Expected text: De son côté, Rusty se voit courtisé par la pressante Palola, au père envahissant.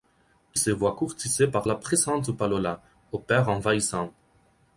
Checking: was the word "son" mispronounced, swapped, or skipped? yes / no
yes